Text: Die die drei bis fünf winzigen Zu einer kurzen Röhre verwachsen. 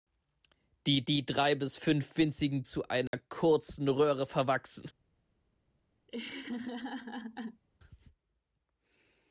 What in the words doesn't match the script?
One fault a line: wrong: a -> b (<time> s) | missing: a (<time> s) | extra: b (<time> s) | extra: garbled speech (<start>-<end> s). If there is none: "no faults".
no faults